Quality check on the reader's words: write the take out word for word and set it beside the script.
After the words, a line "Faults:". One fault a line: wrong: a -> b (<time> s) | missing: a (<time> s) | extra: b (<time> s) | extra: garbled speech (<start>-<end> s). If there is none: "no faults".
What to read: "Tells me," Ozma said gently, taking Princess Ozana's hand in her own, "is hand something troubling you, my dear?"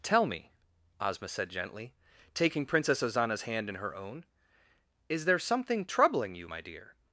"Tell me," Ozma said gently, taking Princess Ozana's hand in her own, "is there something troubling you, my dear?"
Faults:
wrong: Tells -> Tell (0.0 s)
wrong: hand -> there (5.2 s)